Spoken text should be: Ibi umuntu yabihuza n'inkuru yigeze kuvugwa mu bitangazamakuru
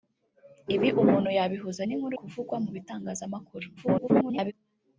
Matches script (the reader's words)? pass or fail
fail